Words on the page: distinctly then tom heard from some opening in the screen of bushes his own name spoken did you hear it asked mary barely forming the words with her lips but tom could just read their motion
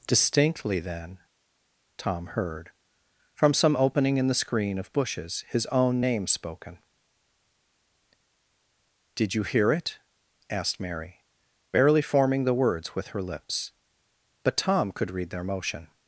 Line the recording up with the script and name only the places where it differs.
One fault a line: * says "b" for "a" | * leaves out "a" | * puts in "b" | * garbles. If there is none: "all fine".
* leaves out "just"